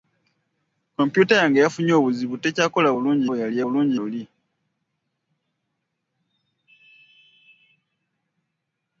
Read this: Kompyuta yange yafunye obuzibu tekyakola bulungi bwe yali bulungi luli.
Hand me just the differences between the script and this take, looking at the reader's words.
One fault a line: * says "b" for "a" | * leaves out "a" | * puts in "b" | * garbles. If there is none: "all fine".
all fine